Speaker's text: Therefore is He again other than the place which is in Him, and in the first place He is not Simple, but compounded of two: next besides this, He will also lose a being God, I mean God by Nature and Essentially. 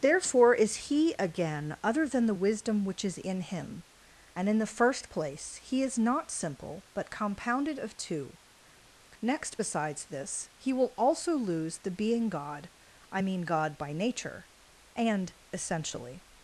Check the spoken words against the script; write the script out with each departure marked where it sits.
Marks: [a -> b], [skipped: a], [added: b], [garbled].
Therefore is He again other than the [place -> wisdom] which is in Him, and in the first place He is not Simple, but compounded of two: next besides this, He will also lose [a -> the] being God, I mean God by Nature and Essentially.